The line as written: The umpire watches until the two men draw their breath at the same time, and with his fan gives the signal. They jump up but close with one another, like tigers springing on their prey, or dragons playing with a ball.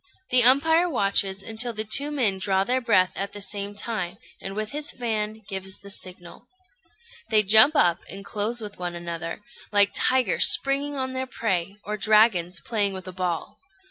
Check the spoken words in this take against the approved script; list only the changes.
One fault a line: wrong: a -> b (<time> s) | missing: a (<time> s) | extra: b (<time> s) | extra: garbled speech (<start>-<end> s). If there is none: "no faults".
wrong: but -> and (8.1 s)